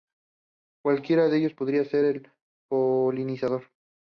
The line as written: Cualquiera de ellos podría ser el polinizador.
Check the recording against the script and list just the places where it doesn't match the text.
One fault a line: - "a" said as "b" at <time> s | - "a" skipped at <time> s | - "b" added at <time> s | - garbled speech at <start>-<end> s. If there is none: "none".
none